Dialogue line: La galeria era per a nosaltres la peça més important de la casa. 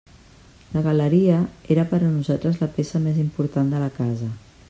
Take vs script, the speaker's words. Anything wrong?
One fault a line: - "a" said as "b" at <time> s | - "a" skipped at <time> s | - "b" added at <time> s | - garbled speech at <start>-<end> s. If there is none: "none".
none